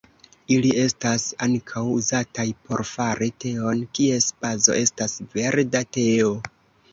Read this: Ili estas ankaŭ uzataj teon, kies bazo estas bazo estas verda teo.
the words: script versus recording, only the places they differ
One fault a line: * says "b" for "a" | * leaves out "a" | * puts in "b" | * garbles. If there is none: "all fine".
* puts in "por fari"
* leaves out "bazo estas"